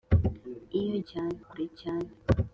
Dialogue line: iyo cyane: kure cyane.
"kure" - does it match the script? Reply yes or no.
yes